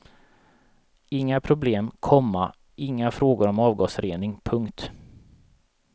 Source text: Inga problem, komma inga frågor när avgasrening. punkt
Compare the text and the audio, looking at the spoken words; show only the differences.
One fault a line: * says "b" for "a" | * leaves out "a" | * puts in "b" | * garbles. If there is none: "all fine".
* says "om" for "när"